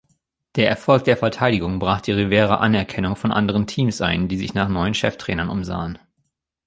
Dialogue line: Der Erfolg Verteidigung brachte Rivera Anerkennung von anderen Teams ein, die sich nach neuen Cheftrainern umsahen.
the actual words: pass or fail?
fail